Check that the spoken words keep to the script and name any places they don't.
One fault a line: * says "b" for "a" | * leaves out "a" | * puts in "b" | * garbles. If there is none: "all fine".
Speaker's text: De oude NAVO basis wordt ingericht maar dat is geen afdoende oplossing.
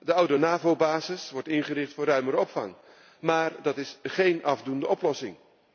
* puts in "voor ruimere opvang"